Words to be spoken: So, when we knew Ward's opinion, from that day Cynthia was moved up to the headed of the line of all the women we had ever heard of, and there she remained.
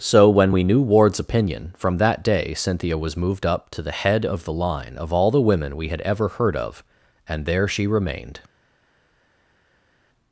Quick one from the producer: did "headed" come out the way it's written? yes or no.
no